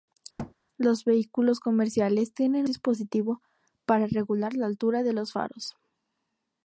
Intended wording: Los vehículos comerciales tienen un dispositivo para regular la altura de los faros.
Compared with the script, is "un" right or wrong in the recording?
wrong